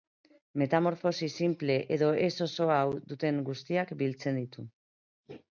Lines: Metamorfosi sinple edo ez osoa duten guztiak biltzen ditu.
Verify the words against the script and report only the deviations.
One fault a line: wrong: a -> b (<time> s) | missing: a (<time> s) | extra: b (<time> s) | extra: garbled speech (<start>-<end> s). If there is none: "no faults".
no faults